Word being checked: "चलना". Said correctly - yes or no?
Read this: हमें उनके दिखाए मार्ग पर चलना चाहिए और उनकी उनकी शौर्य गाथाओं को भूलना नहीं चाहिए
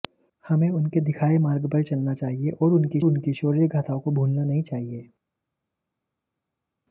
yes